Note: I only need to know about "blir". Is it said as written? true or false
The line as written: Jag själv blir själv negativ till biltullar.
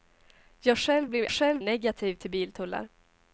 true